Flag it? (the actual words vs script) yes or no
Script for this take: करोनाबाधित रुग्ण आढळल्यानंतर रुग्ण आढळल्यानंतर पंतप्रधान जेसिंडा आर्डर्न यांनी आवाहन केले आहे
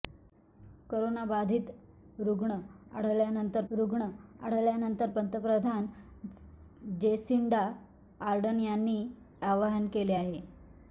no